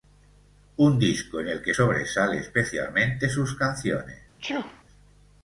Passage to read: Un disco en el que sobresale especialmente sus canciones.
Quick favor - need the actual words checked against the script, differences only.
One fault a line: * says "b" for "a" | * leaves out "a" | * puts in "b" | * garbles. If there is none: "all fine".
all fine